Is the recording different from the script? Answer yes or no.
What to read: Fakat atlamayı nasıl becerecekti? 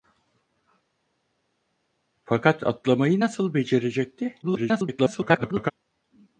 yes